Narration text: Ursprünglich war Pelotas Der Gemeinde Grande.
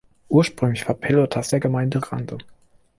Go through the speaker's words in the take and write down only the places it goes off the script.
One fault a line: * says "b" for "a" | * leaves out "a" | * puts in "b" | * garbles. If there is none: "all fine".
all fine